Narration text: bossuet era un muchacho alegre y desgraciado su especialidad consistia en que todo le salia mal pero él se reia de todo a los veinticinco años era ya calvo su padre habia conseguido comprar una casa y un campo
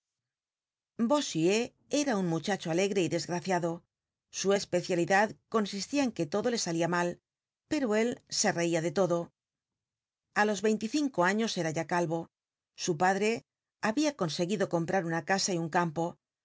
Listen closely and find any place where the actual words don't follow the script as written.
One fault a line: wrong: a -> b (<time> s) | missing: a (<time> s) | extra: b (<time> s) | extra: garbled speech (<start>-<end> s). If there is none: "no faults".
no faults